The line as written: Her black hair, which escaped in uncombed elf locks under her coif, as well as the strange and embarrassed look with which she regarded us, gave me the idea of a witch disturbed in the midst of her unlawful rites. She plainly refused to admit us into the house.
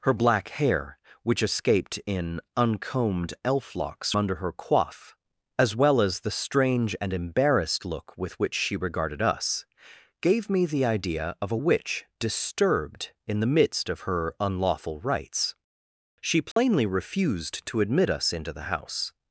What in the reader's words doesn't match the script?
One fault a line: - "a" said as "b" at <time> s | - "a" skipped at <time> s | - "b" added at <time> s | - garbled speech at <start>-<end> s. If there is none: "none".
none